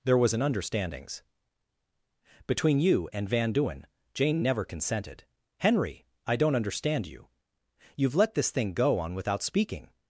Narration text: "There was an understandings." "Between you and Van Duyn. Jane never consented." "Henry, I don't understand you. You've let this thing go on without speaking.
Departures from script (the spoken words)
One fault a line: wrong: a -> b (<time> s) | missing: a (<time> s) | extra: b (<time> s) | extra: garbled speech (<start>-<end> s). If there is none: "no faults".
no faults